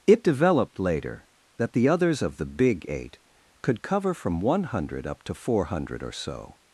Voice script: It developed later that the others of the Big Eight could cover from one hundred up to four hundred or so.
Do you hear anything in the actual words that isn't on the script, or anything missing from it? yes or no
no